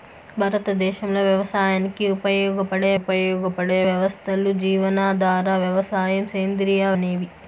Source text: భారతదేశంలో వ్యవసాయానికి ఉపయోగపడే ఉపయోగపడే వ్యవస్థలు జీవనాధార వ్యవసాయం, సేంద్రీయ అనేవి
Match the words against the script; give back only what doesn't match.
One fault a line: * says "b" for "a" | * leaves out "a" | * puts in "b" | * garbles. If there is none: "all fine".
all fine